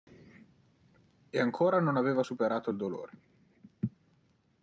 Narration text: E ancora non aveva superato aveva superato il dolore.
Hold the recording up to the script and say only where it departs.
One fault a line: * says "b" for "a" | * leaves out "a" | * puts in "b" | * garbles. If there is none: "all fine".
* leaves out "aveva superato"